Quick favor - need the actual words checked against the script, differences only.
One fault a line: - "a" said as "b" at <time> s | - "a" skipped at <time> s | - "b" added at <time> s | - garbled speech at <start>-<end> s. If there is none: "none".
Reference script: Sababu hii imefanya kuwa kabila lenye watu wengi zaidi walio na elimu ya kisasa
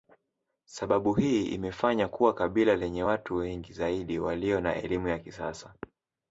none